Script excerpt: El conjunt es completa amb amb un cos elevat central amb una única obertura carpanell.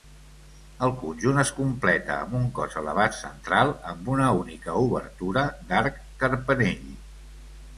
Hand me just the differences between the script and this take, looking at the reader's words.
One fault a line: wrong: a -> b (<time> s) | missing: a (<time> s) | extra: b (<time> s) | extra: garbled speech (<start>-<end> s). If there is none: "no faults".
missing: amb (2.3 s)
extra: d'arc (5.7 s)